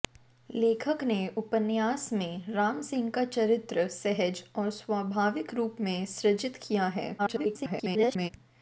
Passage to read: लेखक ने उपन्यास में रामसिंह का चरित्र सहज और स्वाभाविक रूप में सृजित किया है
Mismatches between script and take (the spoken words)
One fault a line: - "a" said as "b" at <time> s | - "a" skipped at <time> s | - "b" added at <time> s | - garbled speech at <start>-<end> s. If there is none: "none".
- garbled speech at 7.2-8.3 s